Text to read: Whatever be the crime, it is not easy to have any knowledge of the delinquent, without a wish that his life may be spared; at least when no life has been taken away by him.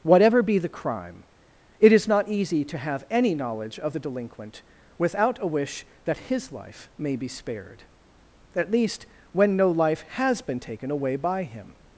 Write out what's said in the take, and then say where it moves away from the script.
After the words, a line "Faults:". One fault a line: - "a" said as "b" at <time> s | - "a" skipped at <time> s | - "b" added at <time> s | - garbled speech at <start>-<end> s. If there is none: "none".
Whatever be the crime, it is not easy to have any knowledge of the delinquent, without a wish that his life may be spared; at least when no life has been taken away by him.
Faults:
none